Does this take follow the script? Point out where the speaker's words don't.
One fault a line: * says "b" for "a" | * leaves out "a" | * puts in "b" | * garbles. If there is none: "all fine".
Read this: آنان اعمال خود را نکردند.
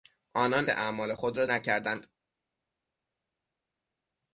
all fine